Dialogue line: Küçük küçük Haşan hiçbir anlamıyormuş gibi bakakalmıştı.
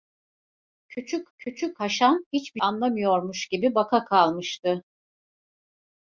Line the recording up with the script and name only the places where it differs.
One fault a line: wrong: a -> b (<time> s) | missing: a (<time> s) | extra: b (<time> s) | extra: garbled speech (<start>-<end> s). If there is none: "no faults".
no faults